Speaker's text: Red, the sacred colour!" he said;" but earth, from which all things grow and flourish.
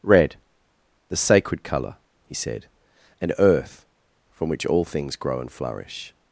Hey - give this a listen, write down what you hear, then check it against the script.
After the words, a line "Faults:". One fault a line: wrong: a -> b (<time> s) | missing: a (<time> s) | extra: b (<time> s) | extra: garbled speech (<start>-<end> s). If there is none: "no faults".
Red, the sacred colour!" he said;" and earth, from which all things grow and flourish.
Faults:
wrong: but -> and (3.2 s)